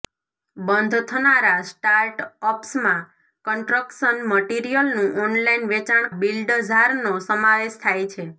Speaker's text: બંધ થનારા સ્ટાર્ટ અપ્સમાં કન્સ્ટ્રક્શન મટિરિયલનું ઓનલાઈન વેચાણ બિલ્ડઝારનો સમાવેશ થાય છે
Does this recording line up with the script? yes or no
yes